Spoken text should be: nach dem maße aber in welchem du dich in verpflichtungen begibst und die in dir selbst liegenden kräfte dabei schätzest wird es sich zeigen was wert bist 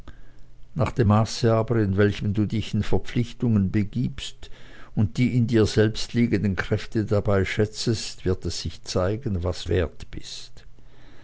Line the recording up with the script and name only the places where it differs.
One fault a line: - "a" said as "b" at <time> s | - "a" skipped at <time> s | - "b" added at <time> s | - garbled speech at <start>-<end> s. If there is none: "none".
none